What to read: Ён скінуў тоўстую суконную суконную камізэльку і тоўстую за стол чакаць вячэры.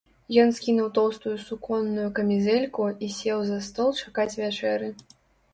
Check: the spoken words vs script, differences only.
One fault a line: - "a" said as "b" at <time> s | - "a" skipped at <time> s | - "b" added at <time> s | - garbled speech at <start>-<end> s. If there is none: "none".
- "суконную" skipped at 2.1 s
- "тоўстую" said as "сеў" at 3.2 s